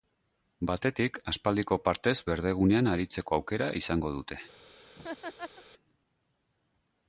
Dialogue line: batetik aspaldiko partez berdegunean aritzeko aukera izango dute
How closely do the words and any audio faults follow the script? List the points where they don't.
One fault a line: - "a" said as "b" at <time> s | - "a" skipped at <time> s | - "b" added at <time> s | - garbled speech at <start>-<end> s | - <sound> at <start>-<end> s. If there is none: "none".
- laugh at 5.0-5.6 s